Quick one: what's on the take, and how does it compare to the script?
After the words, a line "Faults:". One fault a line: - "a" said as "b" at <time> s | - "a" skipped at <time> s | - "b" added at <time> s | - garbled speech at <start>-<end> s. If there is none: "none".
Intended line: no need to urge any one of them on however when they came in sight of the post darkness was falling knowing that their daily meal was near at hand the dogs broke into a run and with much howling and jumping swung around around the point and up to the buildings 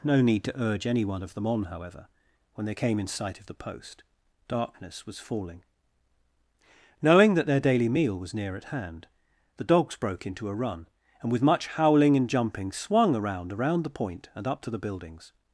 no need to urge any one of them on however when they came in sight of the post darkness was falling knowing that their daily meal was near at hand the dogs broke into a run and with much howling and jumping swung around around the point and up to the buildings
Faults:
none